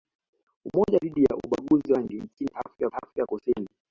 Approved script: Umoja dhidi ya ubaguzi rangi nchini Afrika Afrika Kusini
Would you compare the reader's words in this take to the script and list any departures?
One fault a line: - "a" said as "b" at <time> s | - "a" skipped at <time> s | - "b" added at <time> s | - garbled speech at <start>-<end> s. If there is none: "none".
none